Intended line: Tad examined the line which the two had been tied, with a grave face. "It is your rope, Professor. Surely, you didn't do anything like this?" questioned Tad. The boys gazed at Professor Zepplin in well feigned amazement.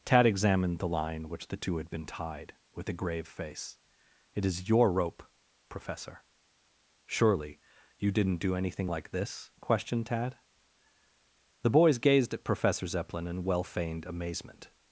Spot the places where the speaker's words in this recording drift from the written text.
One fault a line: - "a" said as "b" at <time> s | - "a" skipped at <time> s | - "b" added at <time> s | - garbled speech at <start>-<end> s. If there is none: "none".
none